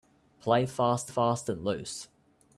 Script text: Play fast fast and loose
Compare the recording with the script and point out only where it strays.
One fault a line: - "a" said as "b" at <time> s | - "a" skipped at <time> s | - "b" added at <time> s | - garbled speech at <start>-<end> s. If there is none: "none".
none